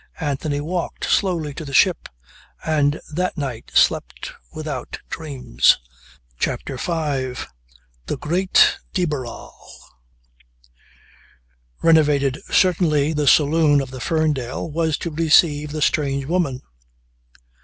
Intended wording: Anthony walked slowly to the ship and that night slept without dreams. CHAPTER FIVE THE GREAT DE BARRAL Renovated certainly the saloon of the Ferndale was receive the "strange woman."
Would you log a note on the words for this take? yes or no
yes